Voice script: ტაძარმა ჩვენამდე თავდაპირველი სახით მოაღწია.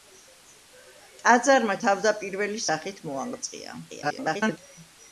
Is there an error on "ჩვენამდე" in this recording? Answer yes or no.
yes